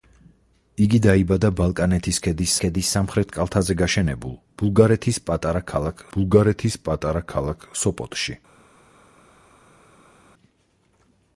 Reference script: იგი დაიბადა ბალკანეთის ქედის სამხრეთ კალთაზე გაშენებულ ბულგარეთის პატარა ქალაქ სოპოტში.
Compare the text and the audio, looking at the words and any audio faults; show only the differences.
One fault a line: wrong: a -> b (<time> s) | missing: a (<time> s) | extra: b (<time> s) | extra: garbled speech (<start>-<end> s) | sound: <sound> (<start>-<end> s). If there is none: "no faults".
extra: ქედის (2.6 s)
extra: ბულგარეთის პატარა ქალაქ (6.2 s)